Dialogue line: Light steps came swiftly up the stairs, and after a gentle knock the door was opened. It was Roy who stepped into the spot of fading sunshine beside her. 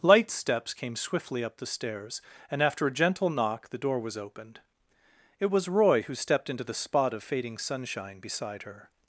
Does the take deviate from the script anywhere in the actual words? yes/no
no